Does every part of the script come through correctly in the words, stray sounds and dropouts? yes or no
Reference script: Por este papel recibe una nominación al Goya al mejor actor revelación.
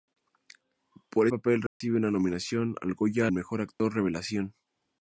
no